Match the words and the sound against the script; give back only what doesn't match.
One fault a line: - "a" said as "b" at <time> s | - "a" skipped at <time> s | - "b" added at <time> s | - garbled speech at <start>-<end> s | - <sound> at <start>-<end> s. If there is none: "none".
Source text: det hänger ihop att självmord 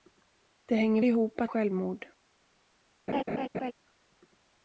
- laugh at 3.1-3.7 s